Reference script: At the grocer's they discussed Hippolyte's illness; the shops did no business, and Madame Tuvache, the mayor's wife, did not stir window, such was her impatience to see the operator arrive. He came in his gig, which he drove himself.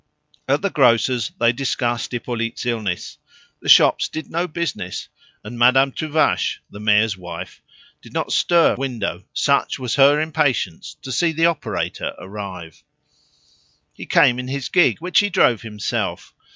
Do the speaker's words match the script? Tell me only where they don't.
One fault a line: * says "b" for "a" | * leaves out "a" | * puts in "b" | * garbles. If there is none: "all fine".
all fine